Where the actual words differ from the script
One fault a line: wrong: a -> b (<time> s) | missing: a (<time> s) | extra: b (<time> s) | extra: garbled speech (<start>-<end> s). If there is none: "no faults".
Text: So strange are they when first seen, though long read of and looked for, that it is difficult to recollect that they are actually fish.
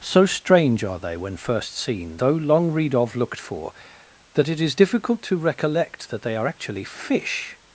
missing: and (3.2 s)